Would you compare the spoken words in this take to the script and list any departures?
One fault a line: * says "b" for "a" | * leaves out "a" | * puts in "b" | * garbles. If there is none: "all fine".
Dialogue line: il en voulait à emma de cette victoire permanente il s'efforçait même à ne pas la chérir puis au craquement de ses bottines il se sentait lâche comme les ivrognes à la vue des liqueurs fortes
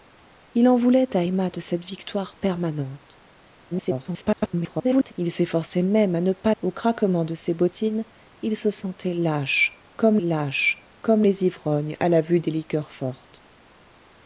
* garbles
* leaves out "la chérir puis"
* puts in "lâche comme"